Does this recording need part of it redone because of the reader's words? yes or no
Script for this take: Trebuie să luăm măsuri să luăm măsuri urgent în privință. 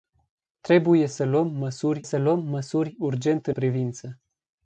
no